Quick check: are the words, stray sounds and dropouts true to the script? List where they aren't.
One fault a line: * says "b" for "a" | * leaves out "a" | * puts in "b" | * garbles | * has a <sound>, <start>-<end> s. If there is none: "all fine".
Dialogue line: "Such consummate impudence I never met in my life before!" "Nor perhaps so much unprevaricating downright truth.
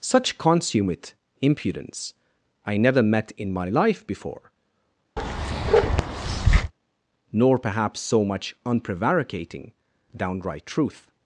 * has a bark, 5.2-6.7 s